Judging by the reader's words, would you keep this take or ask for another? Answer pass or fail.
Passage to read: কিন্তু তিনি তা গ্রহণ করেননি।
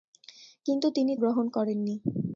fail